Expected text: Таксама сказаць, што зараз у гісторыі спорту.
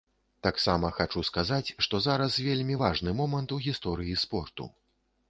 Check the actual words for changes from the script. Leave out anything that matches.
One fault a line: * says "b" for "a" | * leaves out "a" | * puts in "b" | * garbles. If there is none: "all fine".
* puts in "хачу"
* puts in "вельмі важны момант"